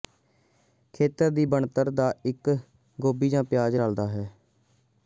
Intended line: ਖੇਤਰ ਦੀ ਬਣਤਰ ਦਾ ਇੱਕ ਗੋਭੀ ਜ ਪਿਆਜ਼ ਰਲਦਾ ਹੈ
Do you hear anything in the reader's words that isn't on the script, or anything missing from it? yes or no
no